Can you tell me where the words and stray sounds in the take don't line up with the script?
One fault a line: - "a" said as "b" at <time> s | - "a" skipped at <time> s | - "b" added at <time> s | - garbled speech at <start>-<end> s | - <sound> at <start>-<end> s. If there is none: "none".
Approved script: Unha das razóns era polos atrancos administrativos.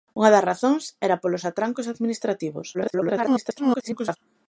- garbled speech at 2.7-4.2 s